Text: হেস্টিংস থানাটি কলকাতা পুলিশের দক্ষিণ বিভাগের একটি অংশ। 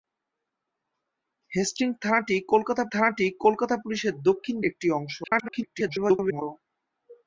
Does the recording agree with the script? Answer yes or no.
no